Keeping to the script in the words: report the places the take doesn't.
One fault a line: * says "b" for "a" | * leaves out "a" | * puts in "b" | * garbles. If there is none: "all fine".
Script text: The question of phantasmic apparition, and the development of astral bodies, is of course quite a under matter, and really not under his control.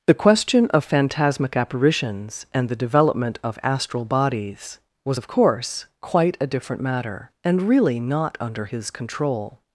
* says "apparitions" for "apparition"
* says "was" for "is"
* says "different" for "under"